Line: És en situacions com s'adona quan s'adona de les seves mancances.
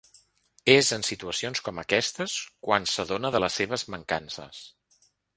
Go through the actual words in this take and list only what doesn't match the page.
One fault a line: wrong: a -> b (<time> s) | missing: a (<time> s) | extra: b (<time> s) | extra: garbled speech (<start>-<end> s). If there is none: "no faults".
wrong: s'adona -> aquestes (1.8 s)